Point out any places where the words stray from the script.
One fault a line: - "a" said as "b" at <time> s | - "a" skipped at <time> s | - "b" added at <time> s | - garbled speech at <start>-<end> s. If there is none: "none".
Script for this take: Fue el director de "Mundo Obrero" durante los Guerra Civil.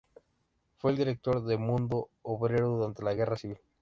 - "los" said as "la" at 3.0 s